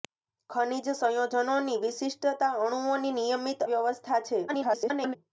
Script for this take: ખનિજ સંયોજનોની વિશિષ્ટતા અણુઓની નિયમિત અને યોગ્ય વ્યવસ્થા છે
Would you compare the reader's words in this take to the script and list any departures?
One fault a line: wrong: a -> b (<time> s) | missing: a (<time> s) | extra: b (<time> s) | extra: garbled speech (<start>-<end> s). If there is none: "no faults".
missing: અને યોગ્ય (3.6 s)
extra: garbled speech (4.5-5.2 s)